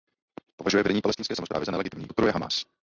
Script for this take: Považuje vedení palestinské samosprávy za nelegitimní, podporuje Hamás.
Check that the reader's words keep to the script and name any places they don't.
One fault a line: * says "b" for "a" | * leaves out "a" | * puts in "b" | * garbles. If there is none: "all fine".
all fine